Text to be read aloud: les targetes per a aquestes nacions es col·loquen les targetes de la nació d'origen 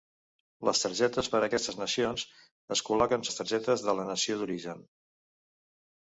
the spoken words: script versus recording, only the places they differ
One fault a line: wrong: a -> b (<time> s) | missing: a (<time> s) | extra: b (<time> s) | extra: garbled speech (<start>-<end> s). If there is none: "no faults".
no faults